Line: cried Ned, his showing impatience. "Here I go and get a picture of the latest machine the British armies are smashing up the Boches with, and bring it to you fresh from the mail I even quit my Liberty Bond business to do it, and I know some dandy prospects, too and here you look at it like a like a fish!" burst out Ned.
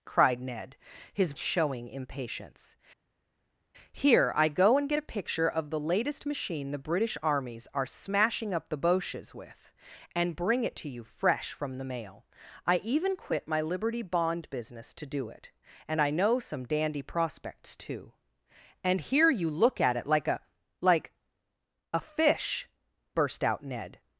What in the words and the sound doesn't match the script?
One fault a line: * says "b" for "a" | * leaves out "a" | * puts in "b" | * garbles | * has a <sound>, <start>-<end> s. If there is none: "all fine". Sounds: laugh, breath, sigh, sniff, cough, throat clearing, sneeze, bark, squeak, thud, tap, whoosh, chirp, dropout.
all fine